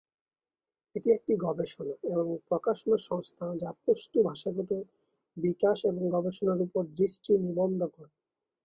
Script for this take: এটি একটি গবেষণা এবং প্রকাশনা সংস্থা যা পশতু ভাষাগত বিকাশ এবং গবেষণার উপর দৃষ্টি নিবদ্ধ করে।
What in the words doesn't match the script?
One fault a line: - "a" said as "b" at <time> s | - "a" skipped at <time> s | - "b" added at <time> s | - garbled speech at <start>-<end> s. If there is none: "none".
none